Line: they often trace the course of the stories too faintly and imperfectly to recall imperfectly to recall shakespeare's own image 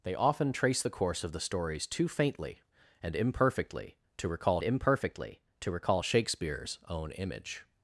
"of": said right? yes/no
yes